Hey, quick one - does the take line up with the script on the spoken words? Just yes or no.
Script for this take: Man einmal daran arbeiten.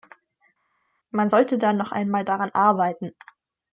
no